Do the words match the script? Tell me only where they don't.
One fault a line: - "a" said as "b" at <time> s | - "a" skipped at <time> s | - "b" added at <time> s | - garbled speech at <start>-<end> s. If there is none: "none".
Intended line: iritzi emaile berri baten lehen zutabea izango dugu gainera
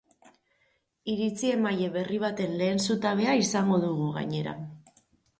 none